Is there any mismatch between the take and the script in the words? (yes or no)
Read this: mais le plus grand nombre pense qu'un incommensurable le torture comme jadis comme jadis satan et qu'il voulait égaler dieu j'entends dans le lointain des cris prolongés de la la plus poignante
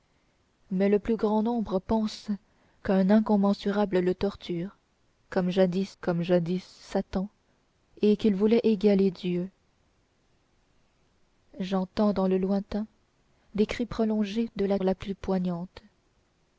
no